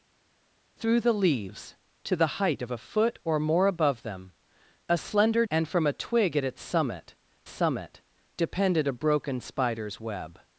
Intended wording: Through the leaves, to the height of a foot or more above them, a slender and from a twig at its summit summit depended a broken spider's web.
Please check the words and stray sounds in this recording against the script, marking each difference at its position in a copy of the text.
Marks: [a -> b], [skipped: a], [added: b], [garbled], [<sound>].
Through the leaves, to the height of a foot or more above them, a slender and from a twig at its summit summit depended a broken spider's web.